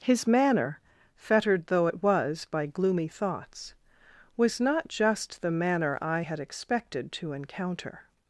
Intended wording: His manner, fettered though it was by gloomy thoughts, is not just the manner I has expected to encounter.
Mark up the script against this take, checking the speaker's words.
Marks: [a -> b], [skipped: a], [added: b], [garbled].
His manner, fettered though it was by gloomy thoughts, [is -> was] not just the manner I [has -> had] expected to encounter.